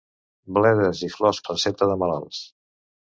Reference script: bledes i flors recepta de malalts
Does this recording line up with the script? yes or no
yes